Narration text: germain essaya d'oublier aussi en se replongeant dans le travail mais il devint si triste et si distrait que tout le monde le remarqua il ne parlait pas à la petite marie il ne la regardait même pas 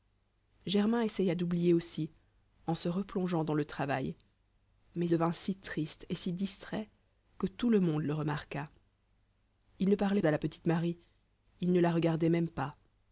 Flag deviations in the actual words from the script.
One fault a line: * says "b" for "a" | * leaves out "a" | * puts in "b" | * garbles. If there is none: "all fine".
* leaves out "il"
* leaves out "pas"